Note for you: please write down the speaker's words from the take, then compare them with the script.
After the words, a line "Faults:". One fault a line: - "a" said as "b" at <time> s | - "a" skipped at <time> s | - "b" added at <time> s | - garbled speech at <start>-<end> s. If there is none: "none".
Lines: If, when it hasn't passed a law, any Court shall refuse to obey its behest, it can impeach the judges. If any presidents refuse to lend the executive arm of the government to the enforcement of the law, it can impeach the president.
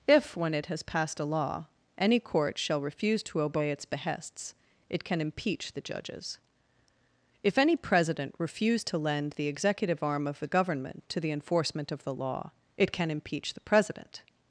If, when it has passed a law, any Court shall refuse to obey its behests, it can impeach the judges. If any president refuse to lend the executive arm of the government to the enforcement of the law, it can impeach the president.
Faults:
- "hasn't" said as "has" at 0.7 s
- "behest" said as "behests" at 3.9 s
- "presidents" said as "president" at 7.8 s